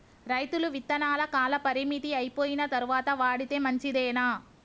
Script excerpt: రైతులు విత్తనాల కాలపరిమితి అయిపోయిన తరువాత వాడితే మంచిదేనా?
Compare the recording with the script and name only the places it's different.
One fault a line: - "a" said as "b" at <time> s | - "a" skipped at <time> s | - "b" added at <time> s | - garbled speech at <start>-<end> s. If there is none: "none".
none